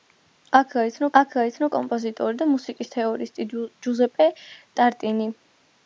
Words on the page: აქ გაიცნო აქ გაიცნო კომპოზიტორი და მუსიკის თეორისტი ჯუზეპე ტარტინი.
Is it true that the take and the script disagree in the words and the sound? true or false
false